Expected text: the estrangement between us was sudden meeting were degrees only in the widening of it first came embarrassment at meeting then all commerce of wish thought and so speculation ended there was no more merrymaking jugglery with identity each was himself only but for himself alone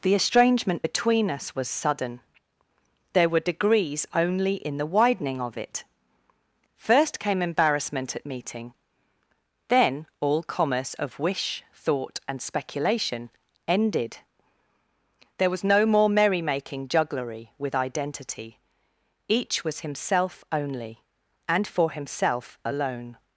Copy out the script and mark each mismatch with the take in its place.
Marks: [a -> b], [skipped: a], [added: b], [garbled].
the estrangement between us was sudden [meeting -> there] were degrees only in the widening of it first came embarrassment at meeting then all commerce of wish thought and [skipped: so] speculation ended there was no more merrymaking jugglery with identity each was himself only [but -> and] for himself alone